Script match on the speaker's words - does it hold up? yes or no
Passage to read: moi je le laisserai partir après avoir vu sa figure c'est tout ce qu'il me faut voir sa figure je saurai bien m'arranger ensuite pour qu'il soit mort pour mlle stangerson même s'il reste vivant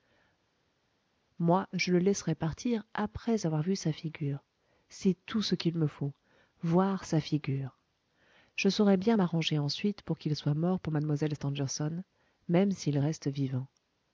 yes